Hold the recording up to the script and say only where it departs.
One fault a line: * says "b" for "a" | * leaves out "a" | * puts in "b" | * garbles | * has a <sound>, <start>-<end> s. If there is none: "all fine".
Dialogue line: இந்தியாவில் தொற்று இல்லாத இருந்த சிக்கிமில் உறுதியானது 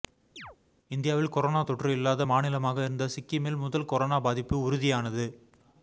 * has a chirp, 0.4-0.6 s
* puts in "கொரோனா"
* puts in "மாநிலமாக"
* puts in "முதல் கொரோனா பாதிப்பு"